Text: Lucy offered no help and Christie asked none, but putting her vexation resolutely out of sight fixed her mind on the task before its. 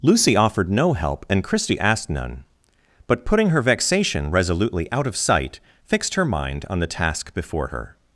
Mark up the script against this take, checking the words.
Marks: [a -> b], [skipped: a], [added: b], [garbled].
Lucy offered no help and Christie asked none, but putting her vexation resolutely out of sight fixed her mind on the task before [its. -> her]